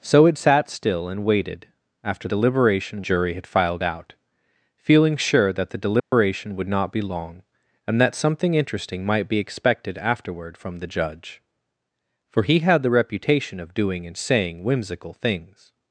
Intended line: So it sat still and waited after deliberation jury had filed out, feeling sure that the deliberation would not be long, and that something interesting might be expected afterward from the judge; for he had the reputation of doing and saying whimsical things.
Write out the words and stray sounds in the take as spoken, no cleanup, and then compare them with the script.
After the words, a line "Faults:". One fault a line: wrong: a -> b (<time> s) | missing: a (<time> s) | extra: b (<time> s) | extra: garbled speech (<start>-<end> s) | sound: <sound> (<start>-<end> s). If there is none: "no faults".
So it sat still and waited after deliberation jury had filed out, feeling sure that the deliberation would not be long, and that something interesting might be expected afterward from the judge; for he had the reputation of doing and saying whimsical things.
Faults:
sound: dropout (6.0-6.1 s)